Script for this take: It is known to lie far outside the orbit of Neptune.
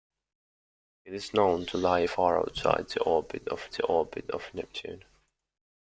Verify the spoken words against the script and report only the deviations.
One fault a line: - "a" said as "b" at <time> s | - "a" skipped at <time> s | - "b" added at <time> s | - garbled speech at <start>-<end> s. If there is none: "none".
- "the orbit of" added at 3.7 s